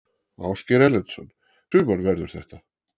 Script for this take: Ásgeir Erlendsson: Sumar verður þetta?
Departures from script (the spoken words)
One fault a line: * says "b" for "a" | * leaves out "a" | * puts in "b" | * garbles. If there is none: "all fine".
all fine